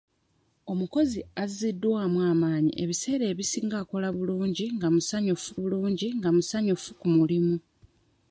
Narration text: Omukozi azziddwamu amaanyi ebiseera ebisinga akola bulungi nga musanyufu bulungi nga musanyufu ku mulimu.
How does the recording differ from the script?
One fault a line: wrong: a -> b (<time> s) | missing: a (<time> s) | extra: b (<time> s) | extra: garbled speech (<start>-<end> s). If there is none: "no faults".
no faults